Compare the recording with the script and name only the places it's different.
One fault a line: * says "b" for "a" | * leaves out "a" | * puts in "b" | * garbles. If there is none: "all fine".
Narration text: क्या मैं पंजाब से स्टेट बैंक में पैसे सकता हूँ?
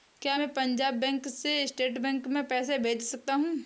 * puts in "बैंक"
* puts in "भेज"